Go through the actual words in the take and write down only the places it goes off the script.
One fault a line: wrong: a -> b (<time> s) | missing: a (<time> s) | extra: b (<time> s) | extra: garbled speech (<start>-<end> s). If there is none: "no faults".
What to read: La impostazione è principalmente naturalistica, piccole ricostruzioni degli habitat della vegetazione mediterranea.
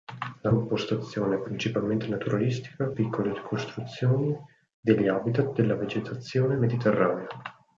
no faults